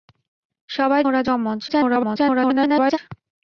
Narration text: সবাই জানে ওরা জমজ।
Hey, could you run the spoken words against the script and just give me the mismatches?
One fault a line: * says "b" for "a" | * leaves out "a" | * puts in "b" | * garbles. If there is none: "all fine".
* leaves out "জানে"
* garbles